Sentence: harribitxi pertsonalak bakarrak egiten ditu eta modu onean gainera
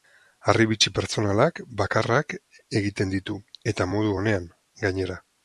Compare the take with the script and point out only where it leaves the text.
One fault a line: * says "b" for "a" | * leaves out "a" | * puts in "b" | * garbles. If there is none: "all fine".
all fine